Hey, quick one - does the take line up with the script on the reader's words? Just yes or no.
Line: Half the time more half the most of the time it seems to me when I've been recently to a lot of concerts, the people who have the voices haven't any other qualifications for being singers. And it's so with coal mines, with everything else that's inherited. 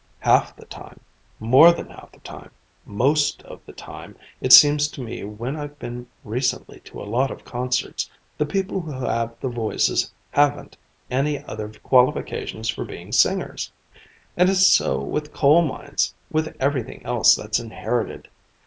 no